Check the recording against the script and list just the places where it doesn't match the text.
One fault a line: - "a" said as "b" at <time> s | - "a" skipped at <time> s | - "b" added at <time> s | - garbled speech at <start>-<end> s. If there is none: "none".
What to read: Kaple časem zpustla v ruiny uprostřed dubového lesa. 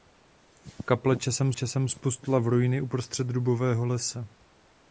- "časem" added at 1.5 s